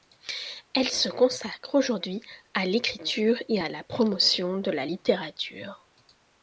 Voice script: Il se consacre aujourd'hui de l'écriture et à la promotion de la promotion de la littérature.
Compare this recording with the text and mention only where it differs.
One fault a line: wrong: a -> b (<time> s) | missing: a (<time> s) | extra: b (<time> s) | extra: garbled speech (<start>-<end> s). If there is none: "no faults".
wrong: Il -> Elle (0.7 s)
wrong: de -> à (2.5 s)
missing: promotion de la (4.9 s)